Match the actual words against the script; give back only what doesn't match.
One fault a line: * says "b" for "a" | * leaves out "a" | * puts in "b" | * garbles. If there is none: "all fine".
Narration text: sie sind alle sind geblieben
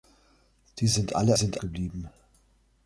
all fine